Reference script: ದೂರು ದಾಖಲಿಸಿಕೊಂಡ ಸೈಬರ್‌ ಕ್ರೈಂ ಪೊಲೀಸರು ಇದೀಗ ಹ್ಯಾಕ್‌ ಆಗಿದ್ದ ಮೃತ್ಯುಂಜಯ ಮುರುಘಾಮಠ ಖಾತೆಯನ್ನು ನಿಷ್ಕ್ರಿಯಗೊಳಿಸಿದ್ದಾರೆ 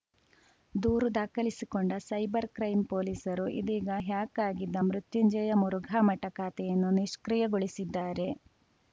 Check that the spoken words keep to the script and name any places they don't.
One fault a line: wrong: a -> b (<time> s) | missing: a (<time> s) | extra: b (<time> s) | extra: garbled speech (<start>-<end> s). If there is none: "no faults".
no faults